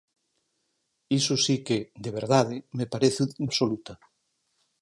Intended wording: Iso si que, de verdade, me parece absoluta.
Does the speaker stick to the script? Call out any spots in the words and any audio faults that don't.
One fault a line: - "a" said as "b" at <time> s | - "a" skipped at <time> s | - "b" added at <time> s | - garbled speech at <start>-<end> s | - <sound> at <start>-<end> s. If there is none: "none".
none